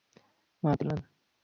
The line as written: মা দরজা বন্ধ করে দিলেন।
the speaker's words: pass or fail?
fail